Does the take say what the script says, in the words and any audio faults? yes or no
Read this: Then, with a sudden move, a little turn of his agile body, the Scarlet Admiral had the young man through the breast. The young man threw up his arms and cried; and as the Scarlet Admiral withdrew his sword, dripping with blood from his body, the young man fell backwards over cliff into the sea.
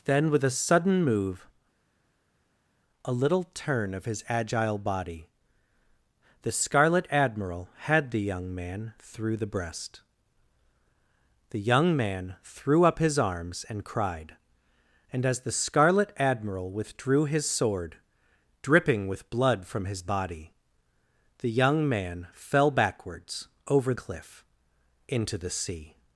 yes